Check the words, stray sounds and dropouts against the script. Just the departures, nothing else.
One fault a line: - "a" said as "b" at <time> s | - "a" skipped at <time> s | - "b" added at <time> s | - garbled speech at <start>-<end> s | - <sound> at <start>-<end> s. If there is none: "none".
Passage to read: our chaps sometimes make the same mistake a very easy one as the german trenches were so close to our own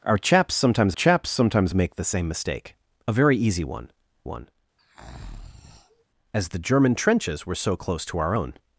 - "chaps sometimes" added at 0.9 s
- "one" added at 4.2 s
- breath at 4.8-6.0 s